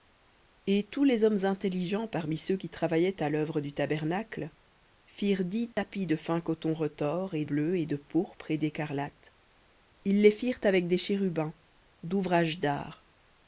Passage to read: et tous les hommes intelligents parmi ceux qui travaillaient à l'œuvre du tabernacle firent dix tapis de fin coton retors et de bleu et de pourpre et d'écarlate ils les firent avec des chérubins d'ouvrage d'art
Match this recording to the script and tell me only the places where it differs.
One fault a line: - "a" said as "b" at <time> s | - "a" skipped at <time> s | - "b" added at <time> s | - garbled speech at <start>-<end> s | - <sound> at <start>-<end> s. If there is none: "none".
- dropout at 5.7-5.8 s
- "de" skipped at 7.5 s